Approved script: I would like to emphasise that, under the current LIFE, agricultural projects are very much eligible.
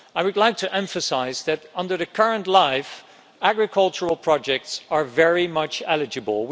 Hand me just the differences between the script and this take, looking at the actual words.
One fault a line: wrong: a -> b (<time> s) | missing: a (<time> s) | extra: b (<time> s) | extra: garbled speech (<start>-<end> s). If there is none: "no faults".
no faults